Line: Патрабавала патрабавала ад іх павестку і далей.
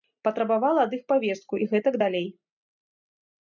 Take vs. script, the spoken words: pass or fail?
fail